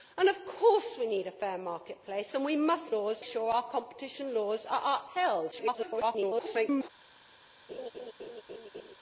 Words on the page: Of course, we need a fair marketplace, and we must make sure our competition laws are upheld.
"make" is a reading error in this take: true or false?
true